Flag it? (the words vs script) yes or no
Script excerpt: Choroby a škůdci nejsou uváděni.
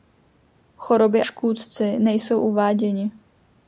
yes